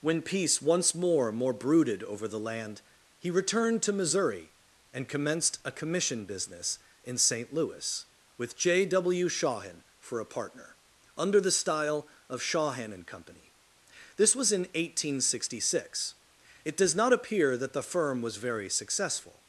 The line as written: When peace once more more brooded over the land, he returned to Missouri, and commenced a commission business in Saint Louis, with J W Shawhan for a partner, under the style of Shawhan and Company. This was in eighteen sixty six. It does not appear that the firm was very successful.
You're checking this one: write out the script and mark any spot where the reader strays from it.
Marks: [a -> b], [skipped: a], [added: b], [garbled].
When peace once more more brooded over the land, he returned to Missouri, and commenced a commission business in Saint Louis, with J W Shawhan for a partner, under the style of Shawhan and Company. This was in eighteen sixty six. It does not appear that the firm was very successful.